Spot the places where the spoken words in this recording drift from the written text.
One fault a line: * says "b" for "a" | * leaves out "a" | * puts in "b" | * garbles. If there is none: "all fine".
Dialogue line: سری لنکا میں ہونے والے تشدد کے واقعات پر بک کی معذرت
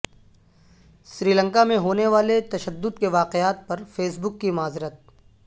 * puts in "فیس"